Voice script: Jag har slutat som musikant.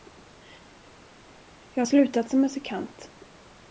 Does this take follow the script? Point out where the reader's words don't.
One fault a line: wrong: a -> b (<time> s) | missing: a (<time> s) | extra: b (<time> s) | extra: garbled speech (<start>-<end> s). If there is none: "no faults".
no faults